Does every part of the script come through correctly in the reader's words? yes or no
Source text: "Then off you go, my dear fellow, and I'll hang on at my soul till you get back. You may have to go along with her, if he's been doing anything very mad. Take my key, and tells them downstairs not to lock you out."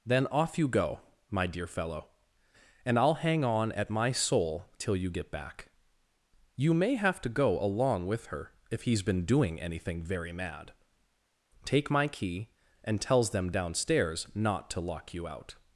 yes